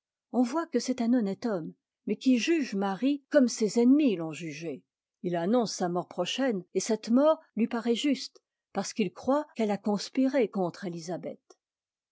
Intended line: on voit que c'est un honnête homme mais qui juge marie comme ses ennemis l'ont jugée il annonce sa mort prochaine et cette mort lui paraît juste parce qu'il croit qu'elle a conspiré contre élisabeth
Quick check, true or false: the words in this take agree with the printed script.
true